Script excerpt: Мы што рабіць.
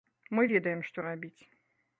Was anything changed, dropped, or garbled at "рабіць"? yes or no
no